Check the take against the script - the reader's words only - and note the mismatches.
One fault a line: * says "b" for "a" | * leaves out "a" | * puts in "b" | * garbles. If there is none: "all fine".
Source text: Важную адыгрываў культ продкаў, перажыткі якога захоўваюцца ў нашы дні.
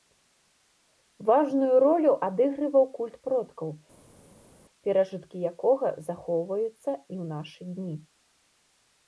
* puts in "ролю"
* puts in "і"